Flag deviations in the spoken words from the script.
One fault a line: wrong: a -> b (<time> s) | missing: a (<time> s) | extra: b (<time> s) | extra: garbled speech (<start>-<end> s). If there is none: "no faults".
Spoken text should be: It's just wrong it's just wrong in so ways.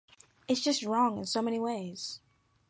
missing: it's just wrong (1.2 s)
extra: many (1.4 s)